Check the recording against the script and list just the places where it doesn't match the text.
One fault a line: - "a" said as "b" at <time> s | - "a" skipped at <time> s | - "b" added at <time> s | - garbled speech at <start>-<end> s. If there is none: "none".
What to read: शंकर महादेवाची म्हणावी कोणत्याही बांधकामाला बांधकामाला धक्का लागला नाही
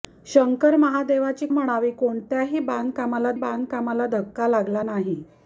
none